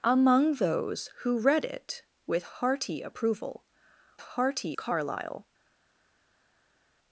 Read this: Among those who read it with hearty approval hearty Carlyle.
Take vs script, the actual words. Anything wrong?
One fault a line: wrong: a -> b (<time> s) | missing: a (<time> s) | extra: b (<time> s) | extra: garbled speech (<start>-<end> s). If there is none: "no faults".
no faults